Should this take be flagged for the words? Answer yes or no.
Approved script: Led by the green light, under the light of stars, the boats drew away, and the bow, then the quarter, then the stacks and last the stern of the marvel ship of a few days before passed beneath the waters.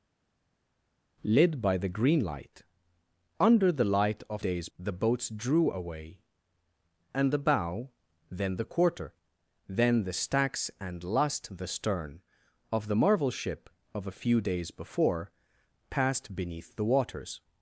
yes